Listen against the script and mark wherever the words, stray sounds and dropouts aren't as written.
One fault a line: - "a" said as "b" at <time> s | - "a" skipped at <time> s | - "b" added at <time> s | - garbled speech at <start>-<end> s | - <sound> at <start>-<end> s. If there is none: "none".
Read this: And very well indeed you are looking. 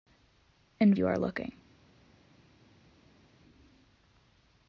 - "very well indeed" skipped at 0.9 s